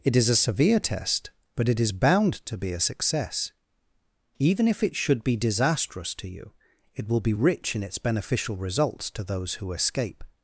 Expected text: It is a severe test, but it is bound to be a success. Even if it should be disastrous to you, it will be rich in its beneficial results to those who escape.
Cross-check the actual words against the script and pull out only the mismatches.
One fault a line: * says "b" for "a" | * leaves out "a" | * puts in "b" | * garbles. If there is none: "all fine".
all fine